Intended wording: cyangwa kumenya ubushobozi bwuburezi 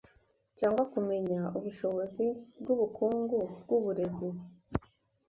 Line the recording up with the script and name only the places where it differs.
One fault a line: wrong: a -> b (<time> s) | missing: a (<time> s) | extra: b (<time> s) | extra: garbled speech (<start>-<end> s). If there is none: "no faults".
extra: bwubukungu (2.6 s)